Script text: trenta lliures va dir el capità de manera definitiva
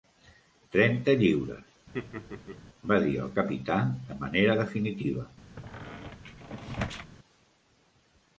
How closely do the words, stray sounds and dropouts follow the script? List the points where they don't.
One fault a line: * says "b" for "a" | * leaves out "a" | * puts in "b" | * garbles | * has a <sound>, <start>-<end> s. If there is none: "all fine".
* has a laugh, 1.9-2.6 s
* has a squeak, 5.6-7.1 s